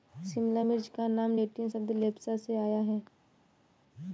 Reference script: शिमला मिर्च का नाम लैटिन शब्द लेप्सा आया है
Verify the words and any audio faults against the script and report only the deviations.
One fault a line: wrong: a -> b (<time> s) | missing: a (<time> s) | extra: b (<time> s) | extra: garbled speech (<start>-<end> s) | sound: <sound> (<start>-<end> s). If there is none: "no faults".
extra: से (2.4 s)